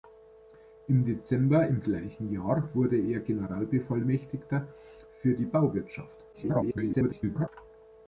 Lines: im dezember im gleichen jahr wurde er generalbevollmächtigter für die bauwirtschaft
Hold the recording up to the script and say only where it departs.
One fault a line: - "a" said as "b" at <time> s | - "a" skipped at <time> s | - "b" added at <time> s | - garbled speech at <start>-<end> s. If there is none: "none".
- garbled speech at 6.3-7.5 s